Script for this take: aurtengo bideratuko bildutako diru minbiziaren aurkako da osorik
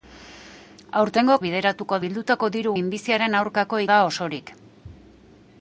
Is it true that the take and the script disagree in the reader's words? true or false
false